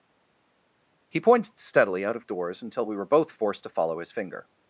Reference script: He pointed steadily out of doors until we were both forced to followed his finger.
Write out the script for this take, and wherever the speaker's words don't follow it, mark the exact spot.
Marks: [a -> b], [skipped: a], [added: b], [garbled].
He pointed steadily out of doors until we were both forced to [followed -> follow] his finger.